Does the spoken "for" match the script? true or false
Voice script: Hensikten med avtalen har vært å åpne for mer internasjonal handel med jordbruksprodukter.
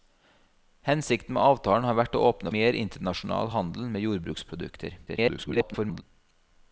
false